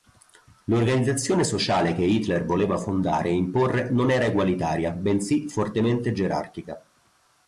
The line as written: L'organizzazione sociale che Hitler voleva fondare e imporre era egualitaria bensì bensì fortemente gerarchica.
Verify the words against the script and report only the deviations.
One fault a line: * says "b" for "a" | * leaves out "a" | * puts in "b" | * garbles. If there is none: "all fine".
* puts in "non"
* leaves out "bensì"